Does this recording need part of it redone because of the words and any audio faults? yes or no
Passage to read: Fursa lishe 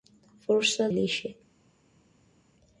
no